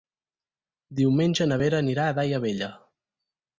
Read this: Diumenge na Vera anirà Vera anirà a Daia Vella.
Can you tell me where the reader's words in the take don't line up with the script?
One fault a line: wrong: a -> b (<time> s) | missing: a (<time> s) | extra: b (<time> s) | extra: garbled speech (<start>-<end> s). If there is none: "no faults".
missing: Vera anirà (2.1 s)